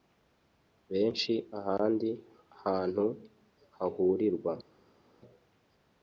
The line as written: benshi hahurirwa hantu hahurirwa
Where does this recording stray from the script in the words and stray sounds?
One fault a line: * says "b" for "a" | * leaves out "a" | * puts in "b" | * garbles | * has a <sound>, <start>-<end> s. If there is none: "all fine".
* says "ahandi" for "hahurirwa"